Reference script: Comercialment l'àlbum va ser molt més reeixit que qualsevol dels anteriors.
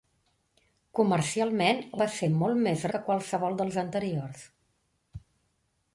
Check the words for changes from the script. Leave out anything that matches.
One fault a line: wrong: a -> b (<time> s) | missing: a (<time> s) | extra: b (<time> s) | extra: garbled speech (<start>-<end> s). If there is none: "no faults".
missing: l'àlbum (1.8 s)
missing: reeixit (2.9 s)